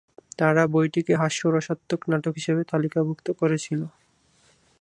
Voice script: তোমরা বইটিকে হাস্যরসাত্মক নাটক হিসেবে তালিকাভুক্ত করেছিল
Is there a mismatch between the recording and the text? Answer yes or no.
yes